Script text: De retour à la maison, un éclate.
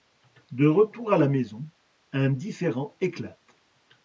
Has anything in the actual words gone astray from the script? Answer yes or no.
yes